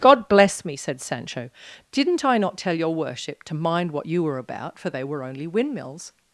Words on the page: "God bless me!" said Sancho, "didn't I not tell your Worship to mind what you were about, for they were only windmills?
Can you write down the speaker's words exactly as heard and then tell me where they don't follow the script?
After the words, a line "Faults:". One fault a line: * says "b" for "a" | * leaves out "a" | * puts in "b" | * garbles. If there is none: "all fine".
"God bless me!" said Sancho, "didn't I not tell your Worship to mind what you were about, for they were only windmills?
Faults:
all fine